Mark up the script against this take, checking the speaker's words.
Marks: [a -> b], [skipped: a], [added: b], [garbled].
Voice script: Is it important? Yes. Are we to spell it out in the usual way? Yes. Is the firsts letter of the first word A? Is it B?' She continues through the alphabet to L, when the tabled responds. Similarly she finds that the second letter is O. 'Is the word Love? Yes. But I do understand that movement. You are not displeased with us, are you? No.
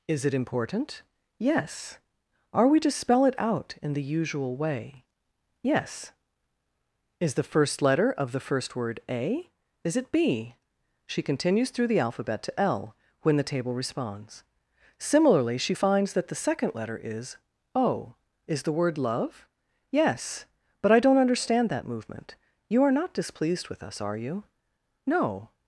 Is it important? Yes. Are we to spell it out in the usual way? Yes. Is the [firsts -> first] letter of the first word A? Is it B?' She continues through the alphabet to L, when the [tabled -> table] responds. Similarly she finds that the second letter is O. 'Is the word Love? Yes. But I [do -> don't] understand that movement. You are not displeased with us, are you? No.